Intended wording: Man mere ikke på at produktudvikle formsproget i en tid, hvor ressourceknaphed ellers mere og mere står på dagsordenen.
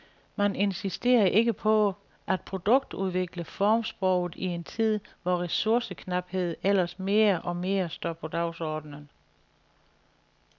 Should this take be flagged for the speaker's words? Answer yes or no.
yes